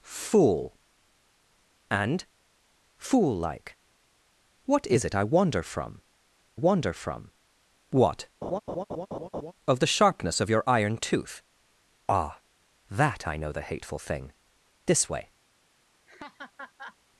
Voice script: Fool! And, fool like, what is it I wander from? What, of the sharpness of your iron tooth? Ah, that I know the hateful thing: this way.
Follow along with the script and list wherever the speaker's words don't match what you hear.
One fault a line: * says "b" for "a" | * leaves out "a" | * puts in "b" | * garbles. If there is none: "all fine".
* puts in "wander from"